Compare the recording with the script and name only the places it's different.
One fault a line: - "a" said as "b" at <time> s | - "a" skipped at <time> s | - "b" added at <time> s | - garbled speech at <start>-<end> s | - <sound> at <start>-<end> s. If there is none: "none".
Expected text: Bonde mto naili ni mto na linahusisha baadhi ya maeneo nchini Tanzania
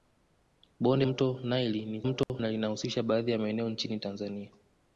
- dropout at 2.2-2.3 s